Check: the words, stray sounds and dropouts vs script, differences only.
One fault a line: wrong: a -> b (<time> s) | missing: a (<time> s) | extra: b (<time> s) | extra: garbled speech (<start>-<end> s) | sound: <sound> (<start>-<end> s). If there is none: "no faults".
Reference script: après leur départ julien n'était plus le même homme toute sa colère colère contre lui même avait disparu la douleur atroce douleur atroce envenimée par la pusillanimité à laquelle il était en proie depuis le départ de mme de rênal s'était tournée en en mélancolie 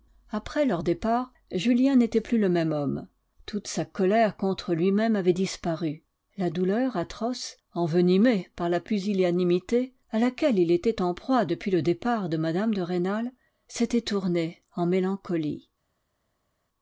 missing: colère (4.4 s)
missing: douleur atroce (7.6 s)
missing: en (14.9 s)